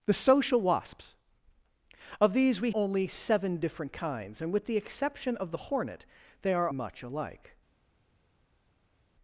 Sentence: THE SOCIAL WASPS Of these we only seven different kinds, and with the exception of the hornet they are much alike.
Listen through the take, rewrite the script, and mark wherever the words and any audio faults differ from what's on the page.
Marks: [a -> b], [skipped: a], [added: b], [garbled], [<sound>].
THE SOCIAL WASPS Of these we only seven different kinds, and with the exception of the hornet they are much alike.